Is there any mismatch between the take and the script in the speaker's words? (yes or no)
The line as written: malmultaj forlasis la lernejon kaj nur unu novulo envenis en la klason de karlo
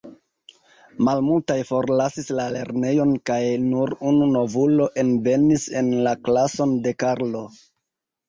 no